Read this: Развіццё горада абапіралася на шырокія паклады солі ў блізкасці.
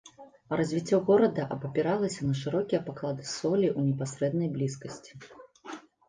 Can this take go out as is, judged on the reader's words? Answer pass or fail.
fail